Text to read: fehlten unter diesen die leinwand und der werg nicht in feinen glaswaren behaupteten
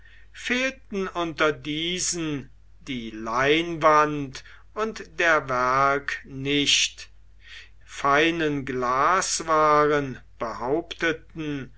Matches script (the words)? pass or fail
fail